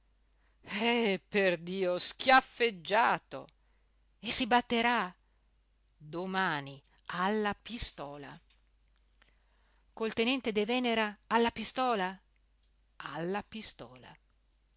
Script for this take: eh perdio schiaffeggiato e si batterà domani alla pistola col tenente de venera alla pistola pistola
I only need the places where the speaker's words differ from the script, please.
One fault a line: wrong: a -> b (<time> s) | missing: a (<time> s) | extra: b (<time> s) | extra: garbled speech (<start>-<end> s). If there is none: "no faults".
extra: alla (13.0 s)